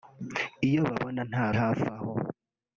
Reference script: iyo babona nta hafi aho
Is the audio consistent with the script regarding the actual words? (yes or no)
yes